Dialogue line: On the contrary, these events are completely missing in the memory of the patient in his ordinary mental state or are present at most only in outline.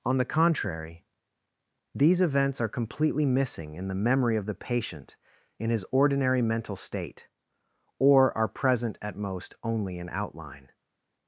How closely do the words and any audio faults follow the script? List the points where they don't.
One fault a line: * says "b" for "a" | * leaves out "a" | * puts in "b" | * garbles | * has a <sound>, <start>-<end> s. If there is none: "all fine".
all fine